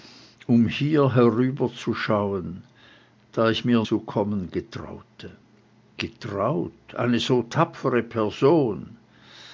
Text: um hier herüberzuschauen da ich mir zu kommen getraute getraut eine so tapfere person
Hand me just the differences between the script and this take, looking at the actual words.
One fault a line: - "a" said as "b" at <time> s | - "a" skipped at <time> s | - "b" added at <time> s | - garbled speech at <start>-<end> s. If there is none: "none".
none